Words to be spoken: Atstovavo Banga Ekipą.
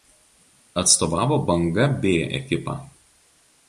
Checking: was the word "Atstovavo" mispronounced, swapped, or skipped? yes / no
no